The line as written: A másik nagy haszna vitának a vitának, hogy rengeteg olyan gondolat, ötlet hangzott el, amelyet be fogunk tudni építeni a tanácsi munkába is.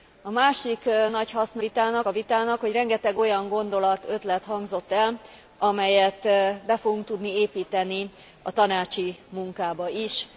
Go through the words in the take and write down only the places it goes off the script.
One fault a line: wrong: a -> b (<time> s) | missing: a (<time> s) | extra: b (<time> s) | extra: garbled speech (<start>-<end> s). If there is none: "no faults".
no faults